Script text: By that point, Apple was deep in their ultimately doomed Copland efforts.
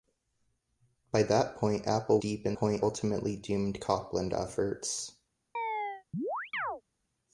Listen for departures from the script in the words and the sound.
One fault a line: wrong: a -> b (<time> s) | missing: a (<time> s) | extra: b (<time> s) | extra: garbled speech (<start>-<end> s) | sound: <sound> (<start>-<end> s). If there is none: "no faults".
missing: was (2.2 s)
wrong: their -> point (2.6 s)
sound: chirp (5.5-6.8 s)